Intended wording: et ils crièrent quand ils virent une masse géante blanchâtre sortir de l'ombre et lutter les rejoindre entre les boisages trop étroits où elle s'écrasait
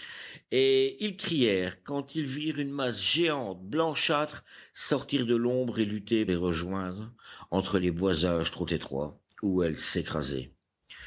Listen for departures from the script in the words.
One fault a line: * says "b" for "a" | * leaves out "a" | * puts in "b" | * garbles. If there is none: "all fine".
all fine